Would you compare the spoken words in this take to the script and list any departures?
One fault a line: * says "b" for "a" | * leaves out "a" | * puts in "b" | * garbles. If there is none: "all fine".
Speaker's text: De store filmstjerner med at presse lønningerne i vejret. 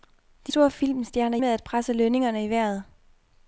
all fine